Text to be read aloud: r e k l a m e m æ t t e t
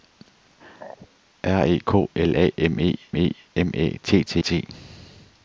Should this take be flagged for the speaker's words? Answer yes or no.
yes